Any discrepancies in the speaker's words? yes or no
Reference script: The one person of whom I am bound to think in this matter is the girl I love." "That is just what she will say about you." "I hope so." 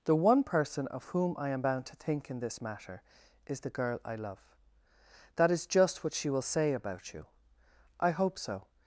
no